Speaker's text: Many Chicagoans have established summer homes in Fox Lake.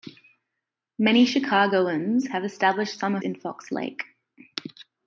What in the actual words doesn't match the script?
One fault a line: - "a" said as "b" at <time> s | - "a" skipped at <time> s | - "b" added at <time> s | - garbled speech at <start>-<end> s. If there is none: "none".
- "homes" skipped at 3.2 s